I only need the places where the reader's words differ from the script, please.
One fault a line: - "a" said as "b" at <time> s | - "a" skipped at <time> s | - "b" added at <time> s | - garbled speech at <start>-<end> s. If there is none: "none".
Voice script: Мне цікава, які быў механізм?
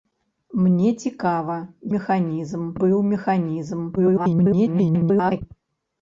- "які" said as "механізм" at 2.0 s
- garbled speech at 4.0-5.4 s